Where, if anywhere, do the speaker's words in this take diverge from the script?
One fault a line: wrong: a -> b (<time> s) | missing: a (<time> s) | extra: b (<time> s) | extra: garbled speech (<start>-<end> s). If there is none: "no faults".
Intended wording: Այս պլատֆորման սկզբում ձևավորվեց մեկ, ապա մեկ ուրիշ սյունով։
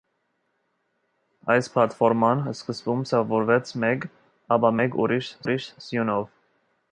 extra: ուրիշ (5.4 s)